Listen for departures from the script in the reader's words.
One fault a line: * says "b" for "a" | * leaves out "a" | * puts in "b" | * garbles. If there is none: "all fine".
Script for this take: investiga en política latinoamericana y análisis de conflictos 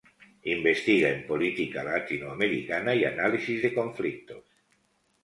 all fine